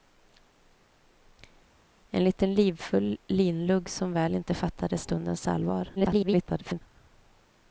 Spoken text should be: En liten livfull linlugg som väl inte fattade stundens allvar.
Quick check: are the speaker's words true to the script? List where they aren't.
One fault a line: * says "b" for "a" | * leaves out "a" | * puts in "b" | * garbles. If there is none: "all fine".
* garbles